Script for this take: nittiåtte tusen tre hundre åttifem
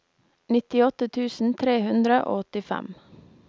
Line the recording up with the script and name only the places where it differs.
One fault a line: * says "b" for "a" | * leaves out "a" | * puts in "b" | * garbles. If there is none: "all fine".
* puts in "og"